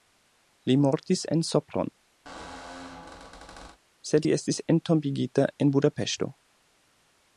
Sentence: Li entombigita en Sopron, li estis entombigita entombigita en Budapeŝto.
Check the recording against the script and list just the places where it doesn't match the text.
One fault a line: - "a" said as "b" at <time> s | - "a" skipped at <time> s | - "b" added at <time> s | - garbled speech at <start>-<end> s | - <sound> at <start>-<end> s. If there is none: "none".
- "entombigita" said as "mortis" at 0.8 s
- squeak at 2.3-3.8 s
- "sed" added at 4.1 s
- "entombigita" skipped at 5.5 s